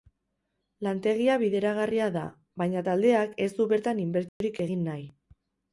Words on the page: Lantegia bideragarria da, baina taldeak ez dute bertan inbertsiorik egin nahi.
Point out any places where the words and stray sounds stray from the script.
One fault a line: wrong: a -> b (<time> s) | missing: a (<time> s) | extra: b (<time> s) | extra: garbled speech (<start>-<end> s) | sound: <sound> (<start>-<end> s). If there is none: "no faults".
wrong: dute -> du (3.6 s)
sound: dropout (4.3-4.4 s)